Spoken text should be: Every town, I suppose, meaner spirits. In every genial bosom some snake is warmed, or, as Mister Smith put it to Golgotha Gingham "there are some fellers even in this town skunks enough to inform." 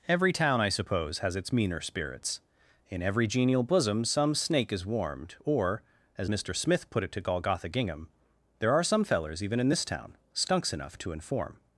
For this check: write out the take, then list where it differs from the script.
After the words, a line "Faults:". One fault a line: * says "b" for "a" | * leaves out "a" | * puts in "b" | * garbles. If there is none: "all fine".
Every town, I suppose, has its meaner spirits. In every genial bosom some snake is warmed, or, as Mister Smith put it to Golgotha Gingham "there are some fellers even in this town skunks enough to inform."
Faults:
* puts in "has its"